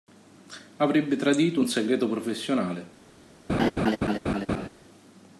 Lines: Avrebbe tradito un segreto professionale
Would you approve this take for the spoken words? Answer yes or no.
yes